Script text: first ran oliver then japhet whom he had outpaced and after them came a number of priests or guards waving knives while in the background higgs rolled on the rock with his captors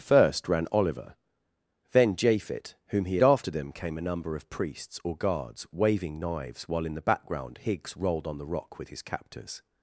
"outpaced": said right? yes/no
no